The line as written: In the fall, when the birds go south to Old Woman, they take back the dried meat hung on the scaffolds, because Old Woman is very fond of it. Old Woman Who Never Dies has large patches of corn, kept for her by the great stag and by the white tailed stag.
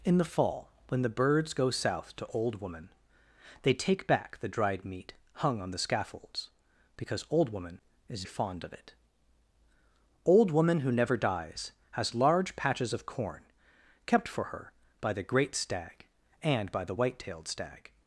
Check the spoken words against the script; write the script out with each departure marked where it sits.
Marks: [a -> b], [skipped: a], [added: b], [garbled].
In the fall, when the birds go south to Old Woman, they take back the dried meat hung on the scaffolds, because Old Woman is [skipped: very] fond of it. Old Woman Who Never Dies has large patches of corn, kept for her by the great stag and by the white tailed stag.